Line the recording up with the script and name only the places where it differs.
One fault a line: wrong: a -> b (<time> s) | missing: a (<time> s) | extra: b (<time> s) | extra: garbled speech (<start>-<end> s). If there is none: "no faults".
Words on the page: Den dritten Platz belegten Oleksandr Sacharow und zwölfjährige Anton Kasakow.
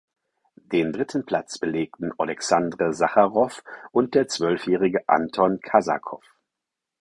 extra: der (4.1 s)